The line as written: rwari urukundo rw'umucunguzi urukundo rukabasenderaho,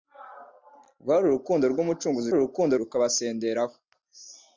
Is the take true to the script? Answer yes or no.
yes